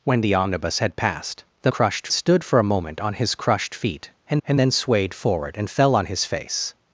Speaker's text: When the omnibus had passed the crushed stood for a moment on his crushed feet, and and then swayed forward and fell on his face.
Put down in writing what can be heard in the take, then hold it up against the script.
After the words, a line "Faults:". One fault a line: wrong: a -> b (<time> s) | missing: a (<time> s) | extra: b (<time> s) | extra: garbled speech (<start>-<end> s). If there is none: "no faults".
When the omnibus had passed the crushed stood for a moment on his crushed feet, and and then swayed forward and fell on his face.
Faults:
no faults